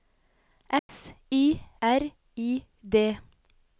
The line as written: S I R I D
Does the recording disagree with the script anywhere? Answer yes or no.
no